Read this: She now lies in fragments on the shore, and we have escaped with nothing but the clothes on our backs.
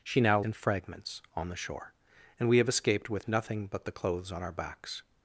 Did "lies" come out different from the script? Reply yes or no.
yes